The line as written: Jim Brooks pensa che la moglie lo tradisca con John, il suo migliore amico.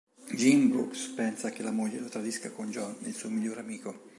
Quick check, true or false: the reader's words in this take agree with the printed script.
true